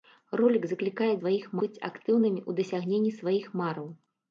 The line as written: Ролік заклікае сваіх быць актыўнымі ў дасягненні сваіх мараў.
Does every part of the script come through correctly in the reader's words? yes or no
yes